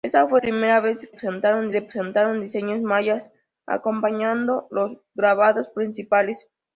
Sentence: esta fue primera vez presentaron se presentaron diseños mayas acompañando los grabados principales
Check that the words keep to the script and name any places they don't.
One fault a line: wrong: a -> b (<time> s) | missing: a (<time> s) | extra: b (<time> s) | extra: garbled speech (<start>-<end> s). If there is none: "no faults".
no faults